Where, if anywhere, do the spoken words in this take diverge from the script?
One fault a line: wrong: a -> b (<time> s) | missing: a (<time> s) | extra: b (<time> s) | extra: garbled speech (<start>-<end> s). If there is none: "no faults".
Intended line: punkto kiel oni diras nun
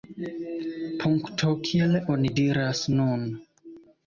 no faults